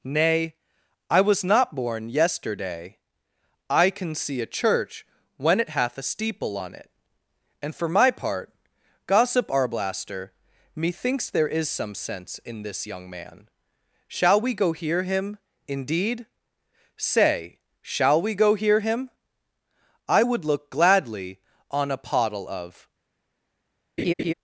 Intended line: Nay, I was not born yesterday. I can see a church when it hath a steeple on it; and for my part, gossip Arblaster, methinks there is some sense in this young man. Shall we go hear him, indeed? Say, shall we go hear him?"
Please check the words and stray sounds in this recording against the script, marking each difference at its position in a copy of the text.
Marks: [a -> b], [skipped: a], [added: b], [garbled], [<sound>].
Nay, I was not born yesterday. I can see a church when it hath a steeple on it; and for my part, gossip Arblaster, methinks there is some sense in this young man. Shall we go hear him, indeed? Say, shall we go hear him?" [added: I would look gladly on a pottle of] [laugh]